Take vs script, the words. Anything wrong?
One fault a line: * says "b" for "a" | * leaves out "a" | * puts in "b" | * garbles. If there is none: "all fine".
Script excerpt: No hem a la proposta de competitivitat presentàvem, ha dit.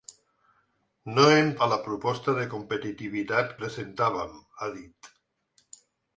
all fine